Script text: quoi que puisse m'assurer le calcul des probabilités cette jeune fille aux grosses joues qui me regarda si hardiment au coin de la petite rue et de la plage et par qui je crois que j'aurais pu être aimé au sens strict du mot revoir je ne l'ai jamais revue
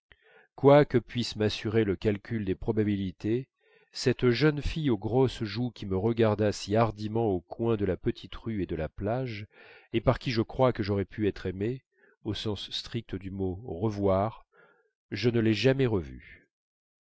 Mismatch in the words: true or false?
false